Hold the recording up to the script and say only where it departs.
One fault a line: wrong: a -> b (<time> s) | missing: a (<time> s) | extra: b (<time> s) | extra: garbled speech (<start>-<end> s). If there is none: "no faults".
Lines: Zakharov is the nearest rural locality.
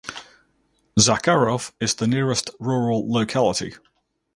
no faults